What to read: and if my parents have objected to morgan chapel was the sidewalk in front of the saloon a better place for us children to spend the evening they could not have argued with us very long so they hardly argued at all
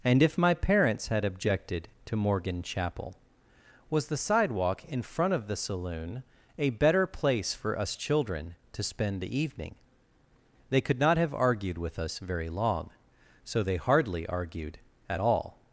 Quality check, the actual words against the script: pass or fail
fail